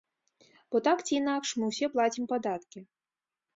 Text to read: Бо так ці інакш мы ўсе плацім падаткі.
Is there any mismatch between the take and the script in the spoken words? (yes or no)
no